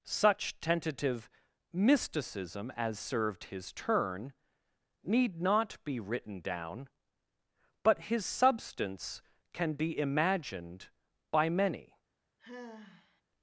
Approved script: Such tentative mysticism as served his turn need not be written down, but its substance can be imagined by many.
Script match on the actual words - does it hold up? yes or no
no